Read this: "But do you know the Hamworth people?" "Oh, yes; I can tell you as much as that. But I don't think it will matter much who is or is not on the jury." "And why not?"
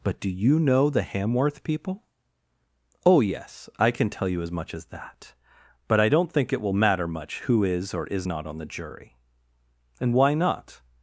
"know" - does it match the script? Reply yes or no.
yes